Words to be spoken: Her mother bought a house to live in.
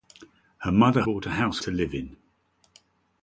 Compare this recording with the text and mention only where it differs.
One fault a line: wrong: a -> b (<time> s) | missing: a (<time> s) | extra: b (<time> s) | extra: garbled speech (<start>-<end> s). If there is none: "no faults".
no faults